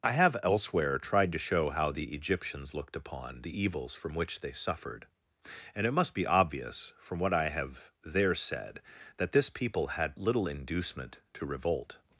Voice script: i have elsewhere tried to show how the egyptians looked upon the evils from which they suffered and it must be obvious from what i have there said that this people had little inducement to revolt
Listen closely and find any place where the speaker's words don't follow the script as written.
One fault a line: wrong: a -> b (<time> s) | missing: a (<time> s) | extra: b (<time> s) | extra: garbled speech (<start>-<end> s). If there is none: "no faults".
no faults